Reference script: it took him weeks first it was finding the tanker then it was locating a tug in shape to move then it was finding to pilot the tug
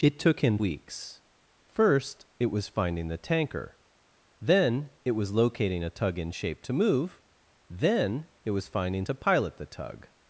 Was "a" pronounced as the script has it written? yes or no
yes